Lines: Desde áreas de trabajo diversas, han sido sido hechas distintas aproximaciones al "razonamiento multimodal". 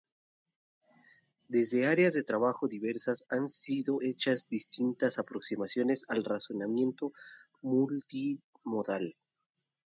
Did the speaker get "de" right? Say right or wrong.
right